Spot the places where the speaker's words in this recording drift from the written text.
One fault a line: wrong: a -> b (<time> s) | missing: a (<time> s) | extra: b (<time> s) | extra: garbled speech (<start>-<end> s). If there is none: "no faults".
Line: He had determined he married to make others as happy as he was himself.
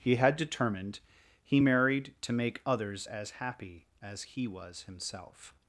no faults